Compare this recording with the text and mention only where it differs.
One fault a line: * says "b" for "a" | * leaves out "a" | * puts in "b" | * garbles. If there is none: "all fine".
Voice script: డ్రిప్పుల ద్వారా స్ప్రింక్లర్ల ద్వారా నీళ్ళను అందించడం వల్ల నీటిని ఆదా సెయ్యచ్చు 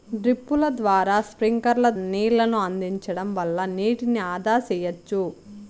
* leaves out "ద్వారా"